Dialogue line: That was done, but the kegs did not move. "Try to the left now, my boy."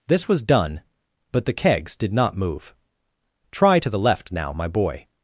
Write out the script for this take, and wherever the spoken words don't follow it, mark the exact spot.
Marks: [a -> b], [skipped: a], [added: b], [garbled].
[That -> This] was done, but the kegs did not move. "Try to the left now, my boy."